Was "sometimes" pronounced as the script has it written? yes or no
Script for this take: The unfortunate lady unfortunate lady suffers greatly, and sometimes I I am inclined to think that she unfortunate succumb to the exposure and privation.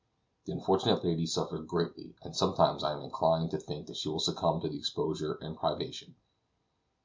yes